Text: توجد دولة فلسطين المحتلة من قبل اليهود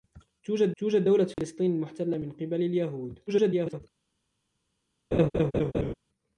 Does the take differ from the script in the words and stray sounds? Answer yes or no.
yes